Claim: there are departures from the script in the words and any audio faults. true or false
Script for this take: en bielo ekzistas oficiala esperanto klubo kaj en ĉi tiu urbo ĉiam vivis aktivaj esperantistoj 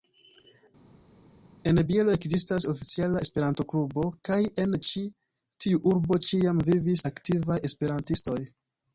false